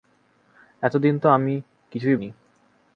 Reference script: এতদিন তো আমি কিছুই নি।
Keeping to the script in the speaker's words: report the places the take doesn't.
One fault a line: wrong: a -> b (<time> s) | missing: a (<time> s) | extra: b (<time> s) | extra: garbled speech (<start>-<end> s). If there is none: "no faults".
no faults